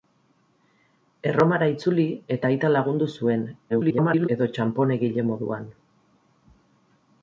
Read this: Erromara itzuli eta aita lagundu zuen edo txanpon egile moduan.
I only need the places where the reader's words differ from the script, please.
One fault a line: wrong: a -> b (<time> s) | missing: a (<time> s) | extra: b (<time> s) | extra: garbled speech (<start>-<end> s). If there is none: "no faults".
extra: garbled speech (3.7-4.3 s)